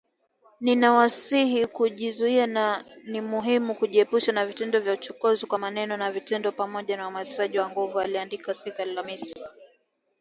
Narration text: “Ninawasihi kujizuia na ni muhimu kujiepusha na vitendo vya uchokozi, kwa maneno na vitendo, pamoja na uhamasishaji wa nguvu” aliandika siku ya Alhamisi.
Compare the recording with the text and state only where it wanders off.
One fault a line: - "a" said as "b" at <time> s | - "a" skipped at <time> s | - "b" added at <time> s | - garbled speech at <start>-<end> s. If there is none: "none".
none